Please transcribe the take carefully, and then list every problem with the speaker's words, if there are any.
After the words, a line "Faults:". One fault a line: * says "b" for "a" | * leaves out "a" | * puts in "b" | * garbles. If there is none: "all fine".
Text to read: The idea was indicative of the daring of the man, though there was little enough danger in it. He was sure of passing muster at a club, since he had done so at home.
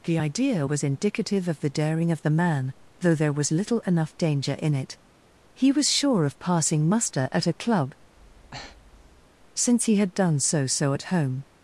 The idea was indicative of the daring of the man, though there was little enough danger in it. He was sure of passing muster at a club, since he had done so so at home.
Faults:
* puts in "so"